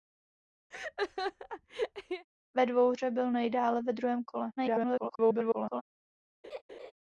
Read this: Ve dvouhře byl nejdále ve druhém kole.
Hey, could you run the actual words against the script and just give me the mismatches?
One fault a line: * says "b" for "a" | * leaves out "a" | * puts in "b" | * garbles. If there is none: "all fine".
* garbles